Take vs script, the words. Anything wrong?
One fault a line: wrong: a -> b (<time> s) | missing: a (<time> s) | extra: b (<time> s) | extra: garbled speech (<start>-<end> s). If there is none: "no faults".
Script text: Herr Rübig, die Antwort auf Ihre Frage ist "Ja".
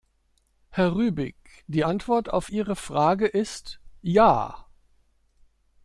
no faults